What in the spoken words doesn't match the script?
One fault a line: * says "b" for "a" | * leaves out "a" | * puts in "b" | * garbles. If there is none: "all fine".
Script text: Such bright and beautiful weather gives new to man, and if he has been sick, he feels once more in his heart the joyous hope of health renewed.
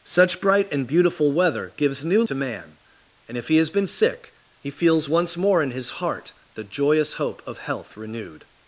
all fine